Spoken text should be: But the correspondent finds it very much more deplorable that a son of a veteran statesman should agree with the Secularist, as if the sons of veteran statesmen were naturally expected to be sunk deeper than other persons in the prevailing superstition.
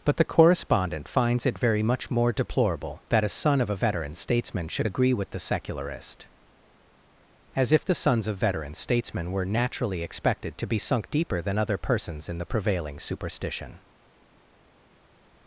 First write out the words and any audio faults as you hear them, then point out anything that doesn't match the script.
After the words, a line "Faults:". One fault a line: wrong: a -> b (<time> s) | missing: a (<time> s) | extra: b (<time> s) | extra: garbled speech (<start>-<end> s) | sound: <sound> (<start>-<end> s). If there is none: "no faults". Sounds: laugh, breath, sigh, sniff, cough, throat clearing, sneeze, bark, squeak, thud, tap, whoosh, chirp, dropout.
But the correspondent finds it very much more deplorable that a son of a veteran statesman should agree with the Secularist, as if the sons of veteran statesmen were naturally expected to be sunk deeper than other persons in the prevailing superstition.
Faults:
no faults